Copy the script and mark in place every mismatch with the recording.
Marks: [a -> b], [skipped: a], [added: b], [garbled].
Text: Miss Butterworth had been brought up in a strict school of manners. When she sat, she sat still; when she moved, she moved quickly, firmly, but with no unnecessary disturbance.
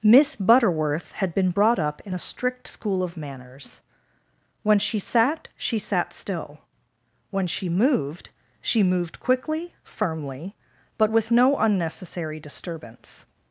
Miss Butterworth had been brought up in a strict school of manners. When she sat, she sat still; when she moved, she moved quickly, firmly, but with no unnecessary disturbance.